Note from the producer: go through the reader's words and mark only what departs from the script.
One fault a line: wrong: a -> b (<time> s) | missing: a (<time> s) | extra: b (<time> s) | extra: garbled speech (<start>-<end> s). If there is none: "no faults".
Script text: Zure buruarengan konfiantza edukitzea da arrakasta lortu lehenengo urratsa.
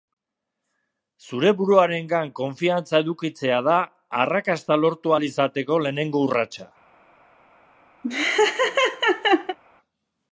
extra: ahal izateko (5.1 s)